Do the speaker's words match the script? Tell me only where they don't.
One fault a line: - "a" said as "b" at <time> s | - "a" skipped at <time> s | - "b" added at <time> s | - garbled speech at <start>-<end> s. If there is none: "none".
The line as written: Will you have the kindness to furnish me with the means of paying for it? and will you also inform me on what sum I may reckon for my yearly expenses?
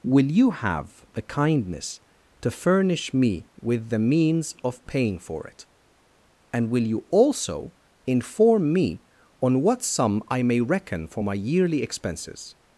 none